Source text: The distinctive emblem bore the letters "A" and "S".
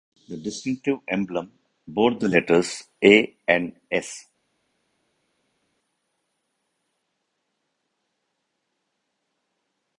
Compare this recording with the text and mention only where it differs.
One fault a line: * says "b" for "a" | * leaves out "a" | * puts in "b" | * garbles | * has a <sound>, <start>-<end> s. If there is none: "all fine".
all fine